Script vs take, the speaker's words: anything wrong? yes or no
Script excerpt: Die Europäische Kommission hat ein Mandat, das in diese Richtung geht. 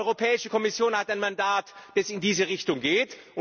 no